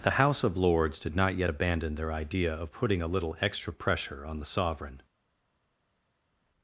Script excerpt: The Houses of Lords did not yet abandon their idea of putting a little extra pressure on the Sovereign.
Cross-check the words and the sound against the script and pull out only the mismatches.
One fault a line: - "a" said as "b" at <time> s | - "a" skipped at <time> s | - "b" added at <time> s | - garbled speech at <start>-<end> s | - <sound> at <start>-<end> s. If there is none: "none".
- "Houses" said as "House" at 0.2 s